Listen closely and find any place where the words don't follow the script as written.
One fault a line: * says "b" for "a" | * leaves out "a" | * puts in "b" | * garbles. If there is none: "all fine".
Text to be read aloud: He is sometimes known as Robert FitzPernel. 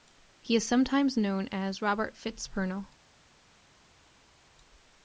all fine